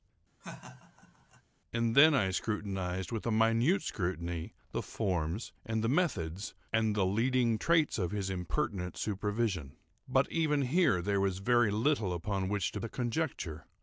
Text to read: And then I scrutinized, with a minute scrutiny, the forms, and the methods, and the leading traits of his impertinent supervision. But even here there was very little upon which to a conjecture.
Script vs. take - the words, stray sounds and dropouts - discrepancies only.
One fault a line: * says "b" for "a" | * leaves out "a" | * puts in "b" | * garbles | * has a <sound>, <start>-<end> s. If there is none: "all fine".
* has a laugh, 0.4-1.4 s